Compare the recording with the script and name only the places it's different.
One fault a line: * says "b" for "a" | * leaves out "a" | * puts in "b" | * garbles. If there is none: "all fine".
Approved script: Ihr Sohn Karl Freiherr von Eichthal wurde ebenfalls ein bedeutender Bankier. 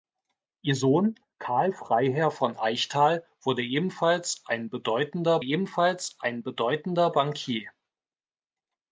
* puts in "ebenfalls ein bedeutender"